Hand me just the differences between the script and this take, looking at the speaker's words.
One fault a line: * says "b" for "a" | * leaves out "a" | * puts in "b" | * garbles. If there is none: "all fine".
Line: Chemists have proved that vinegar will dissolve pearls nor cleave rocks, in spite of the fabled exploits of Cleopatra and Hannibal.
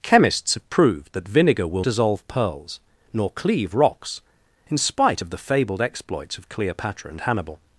all fine